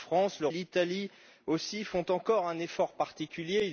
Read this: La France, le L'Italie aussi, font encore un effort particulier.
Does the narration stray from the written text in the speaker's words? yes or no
no